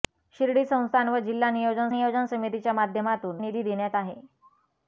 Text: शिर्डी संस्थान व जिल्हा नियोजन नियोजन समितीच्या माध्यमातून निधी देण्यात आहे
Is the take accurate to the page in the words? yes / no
yes